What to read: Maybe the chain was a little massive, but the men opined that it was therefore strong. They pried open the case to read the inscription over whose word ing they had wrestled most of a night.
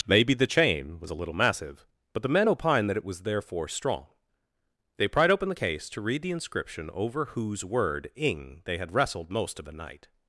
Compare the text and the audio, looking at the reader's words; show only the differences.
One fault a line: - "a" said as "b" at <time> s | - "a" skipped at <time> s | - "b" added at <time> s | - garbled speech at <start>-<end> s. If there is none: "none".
- "a" said as "the" at 9.6 s